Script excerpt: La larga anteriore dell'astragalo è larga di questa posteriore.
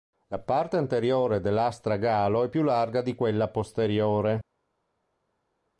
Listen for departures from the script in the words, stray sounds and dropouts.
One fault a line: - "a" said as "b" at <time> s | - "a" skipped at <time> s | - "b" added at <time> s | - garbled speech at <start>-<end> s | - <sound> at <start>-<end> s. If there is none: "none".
- "larga" said as "parte" at 0.4 s
- "più" added at 2.5 s
- "questa" said as "quella" at 3.1 s